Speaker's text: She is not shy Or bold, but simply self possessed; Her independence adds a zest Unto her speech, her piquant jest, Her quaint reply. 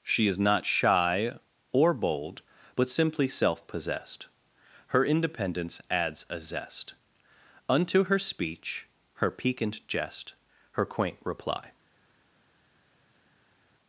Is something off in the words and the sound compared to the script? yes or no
no